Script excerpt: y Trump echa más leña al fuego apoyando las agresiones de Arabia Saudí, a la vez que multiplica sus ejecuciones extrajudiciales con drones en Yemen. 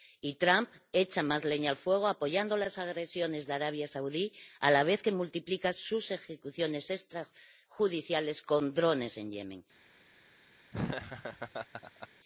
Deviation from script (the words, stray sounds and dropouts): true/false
true